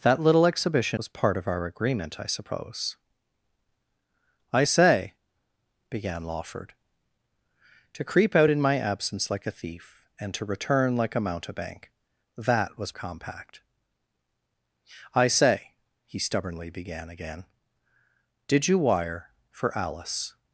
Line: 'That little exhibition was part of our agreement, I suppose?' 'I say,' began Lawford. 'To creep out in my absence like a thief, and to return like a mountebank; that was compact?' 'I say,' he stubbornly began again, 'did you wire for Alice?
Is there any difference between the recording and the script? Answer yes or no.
no